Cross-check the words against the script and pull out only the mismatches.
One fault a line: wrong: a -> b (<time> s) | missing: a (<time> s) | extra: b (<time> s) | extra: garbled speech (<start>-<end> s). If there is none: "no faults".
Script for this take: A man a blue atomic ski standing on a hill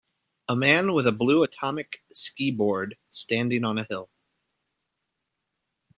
extra: with (0.9 s)
extra: board (2.5 s)